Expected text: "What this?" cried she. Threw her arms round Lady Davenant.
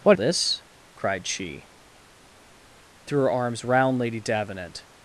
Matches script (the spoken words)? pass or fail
pass